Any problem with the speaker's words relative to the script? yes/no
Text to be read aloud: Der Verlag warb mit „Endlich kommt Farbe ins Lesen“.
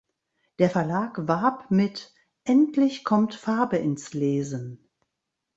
no